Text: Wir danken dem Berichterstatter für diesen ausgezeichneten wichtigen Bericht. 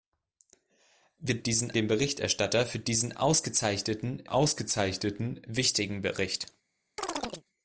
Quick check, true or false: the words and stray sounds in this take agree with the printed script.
false